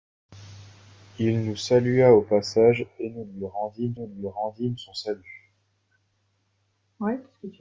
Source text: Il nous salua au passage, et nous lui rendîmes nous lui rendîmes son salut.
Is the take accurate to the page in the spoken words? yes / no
yes